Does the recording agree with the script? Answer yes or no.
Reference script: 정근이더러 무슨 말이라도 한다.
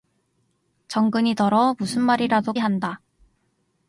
yes